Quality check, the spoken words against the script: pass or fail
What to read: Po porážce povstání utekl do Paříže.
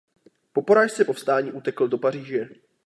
pass